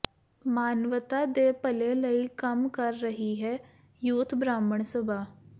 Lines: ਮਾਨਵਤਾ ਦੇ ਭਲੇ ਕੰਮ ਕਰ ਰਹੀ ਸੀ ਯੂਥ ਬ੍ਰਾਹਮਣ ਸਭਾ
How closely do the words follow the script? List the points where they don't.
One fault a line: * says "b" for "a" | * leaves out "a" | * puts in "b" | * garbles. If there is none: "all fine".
* puts in "ਲਈ"
* says "ਹੈ" for "ਸੀ"